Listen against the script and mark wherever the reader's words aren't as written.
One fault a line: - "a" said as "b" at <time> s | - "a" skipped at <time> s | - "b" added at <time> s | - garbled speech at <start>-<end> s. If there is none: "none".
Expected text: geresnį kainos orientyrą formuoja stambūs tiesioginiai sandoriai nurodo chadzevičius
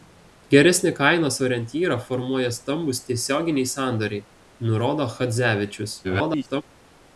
- garbled speech at 6.0-6.6 s